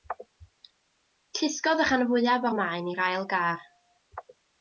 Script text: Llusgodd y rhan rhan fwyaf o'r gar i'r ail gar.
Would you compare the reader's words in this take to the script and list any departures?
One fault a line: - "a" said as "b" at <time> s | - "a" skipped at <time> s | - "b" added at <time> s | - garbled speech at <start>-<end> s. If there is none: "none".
- "rhan" skipped at 2.0 s
- "gar" said as "maen" at 2.6 s